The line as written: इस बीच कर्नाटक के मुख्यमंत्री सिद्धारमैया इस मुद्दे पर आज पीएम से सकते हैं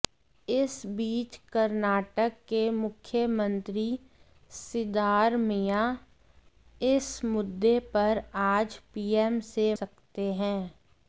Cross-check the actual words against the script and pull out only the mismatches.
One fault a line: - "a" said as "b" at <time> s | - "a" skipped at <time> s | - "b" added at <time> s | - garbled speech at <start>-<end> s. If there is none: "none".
none